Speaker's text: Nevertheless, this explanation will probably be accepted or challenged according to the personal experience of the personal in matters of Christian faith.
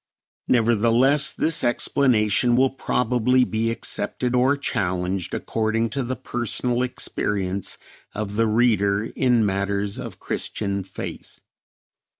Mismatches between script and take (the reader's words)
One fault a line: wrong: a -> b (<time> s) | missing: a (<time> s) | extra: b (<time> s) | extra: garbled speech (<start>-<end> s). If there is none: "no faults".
wrong: personal -> reader (8.5 s)